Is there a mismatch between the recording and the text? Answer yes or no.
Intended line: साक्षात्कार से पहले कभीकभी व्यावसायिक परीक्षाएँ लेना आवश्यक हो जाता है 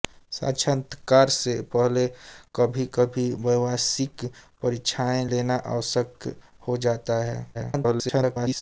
yes